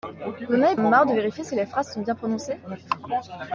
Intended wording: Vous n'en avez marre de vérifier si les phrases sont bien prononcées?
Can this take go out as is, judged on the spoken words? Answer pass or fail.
pass